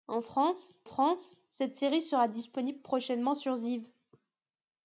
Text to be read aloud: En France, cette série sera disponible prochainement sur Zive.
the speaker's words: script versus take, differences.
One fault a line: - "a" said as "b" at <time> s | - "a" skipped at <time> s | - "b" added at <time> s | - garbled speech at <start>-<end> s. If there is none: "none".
- "France" added at 0.8 s